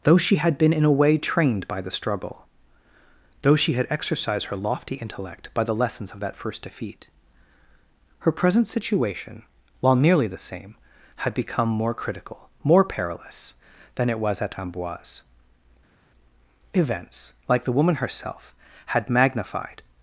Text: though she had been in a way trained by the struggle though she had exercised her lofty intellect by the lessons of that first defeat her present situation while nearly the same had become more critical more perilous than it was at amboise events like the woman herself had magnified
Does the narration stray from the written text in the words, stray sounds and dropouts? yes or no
no